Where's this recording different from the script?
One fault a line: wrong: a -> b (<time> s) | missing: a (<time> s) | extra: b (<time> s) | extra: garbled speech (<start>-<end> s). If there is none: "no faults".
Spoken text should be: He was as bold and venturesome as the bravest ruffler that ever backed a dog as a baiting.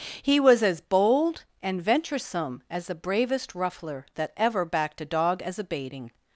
no faults